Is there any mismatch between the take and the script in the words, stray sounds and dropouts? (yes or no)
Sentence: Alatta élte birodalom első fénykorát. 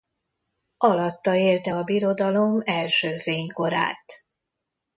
yes